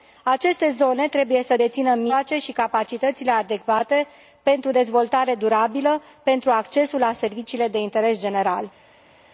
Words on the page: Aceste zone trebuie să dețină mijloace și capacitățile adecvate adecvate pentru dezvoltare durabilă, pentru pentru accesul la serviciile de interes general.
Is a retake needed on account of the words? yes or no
yes